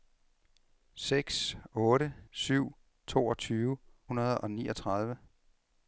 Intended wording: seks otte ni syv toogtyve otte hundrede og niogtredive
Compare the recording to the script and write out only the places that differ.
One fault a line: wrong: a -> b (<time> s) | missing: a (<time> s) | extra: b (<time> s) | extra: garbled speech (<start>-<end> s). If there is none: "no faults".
missing: ni (2.1 s)
missing: otte (3.8 s)